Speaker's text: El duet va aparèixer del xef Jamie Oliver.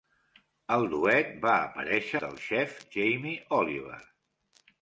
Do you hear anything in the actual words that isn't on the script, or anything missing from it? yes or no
no